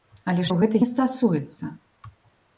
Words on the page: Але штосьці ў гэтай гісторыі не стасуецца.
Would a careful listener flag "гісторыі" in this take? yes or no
yes